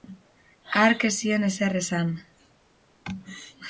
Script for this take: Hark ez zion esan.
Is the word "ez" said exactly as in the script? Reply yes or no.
yes